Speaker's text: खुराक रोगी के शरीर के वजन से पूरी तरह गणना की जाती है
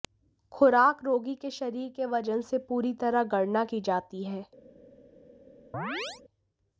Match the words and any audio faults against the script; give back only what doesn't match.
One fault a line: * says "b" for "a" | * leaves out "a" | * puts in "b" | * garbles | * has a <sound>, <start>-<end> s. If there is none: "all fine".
* has a chirp, 5.7-6.2 s